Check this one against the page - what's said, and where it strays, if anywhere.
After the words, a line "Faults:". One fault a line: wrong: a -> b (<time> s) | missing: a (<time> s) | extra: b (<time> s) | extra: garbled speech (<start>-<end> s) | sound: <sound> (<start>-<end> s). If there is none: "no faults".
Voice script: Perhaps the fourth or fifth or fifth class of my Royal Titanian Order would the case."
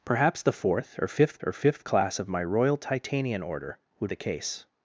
Perhaps the fourth or fifth or fifth class of my Royal Titanian Order would the case."
Faults:
no faults